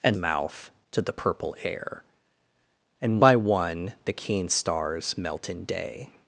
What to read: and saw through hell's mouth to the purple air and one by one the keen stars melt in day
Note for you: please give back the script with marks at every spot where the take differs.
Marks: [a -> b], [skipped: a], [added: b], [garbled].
and [skipped: saw through hell's] mouth to the purple air and [skipped: one] by one the keen stars melt in day